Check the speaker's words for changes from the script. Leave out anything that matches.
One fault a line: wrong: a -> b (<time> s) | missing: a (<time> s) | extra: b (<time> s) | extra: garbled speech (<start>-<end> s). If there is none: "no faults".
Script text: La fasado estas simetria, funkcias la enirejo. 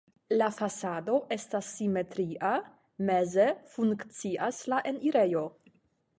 extra: meze (3.1 s)